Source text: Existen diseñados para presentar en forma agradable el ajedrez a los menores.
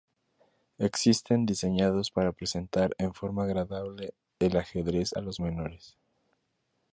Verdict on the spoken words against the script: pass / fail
pass